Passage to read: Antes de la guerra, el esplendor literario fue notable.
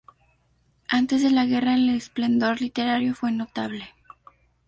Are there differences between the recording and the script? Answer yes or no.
no